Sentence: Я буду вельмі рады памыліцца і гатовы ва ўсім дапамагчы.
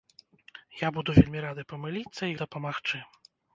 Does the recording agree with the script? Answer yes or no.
no